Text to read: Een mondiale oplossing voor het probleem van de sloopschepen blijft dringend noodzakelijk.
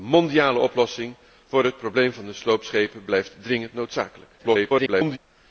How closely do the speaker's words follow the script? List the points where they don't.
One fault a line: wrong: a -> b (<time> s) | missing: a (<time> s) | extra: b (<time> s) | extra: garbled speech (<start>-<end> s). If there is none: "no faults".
extra: garbled speech (4.4-5.2 s)